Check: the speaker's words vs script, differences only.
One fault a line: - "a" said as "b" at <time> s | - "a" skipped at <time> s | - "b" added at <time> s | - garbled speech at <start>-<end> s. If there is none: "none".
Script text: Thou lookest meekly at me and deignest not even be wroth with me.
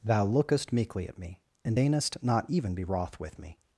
none